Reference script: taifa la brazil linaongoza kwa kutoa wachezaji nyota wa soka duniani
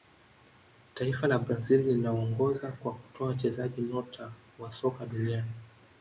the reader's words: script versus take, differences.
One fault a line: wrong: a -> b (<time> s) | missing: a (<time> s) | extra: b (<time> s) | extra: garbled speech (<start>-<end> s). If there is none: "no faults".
no faults